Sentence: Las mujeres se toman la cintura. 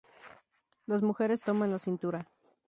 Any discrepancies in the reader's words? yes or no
yes